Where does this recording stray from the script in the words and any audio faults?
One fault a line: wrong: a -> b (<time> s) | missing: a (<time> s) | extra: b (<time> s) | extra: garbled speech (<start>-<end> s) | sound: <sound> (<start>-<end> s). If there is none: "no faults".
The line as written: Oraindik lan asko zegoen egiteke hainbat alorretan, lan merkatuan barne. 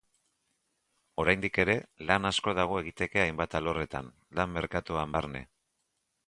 extra: ere (1.6 s)
wrong: zegoen -> dago (2.6 s)